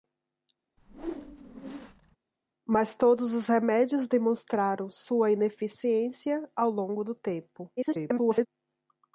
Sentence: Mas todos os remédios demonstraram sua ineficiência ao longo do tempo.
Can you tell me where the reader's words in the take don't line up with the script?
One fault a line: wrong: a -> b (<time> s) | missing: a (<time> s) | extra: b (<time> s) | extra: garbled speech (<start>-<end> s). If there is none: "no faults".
extra: garbled speech (7.8-8.5 s)